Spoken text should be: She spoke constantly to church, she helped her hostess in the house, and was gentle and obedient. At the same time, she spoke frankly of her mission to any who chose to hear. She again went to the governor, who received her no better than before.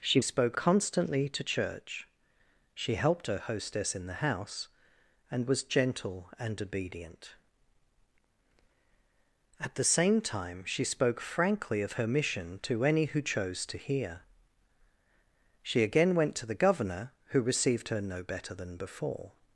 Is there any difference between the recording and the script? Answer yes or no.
no